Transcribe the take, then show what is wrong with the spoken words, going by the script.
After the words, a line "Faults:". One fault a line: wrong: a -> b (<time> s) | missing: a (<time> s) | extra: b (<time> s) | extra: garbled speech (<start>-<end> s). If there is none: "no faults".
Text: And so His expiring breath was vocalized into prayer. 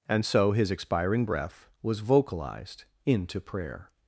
And so His expiring breath was vocalized into prayer.
Faults:
no faults